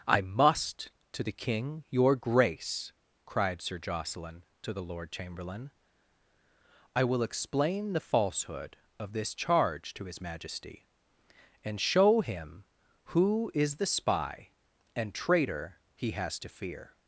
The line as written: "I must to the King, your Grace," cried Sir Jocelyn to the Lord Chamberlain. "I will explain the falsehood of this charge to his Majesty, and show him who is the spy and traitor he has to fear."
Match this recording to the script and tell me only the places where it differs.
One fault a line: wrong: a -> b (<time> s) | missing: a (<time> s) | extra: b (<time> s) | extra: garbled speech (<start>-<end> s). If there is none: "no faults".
no faults